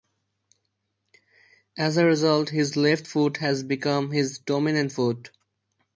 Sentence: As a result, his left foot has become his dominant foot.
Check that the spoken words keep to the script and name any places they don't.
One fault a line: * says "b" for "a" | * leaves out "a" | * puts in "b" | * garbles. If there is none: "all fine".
all fine